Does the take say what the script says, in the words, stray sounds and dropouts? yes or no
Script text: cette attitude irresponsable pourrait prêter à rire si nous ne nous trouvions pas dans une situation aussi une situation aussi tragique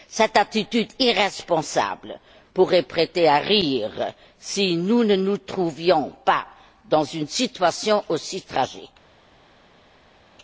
no